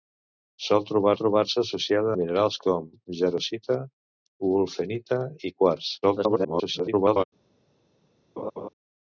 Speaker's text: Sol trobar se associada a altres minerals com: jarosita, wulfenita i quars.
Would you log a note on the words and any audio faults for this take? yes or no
yes